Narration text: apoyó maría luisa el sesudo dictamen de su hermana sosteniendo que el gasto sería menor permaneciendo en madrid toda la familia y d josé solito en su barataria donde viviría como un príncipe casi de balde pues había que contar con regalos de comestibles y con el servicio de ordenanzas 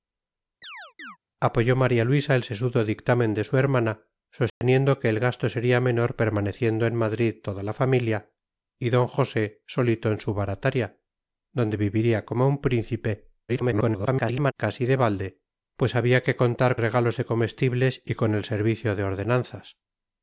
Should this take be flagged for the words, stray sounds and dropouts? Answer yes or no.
yes